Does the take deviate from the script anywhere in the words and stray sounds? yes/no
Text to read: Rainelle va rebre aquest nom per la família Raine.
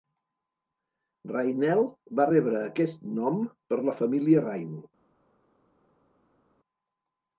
no